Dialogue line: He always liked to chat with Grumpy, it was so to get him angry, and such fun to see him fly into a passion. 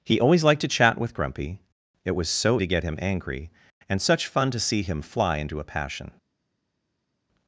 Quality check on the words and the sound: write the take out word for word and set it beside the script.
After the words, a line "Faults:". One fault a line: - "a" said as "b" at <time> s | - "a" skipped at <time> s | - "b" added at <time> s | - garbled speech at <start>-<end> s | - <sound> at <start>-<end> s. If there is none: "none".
He always liked to chat with Grumpy, it was so to get him angry, and such fun to see him fly into a passion.
Faults:
none